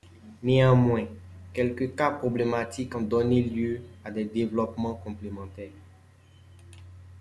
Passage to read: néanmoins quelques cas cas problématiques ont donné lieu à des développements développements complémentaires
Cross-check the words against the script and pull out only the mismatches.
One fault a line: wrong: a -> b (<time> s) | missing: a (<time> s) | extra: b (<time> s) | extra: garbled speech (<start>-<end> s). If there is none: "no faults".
missing: cas (2.1 s)
missing: développements (4.9 s)